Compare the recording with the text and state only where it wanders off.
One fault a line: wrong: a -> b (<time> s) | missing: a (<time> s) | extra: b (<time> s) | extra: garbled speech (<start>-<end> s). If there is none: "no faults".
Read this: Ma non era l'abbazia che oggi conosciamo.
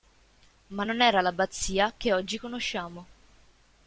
no faults